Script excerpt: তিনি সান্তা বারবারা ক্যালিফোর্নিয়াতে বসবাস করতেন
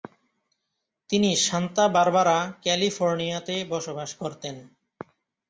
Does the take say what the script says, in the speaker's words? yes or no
yes